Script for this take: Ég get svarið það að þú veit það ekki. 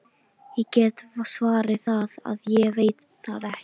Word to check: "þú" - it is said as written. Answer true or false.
false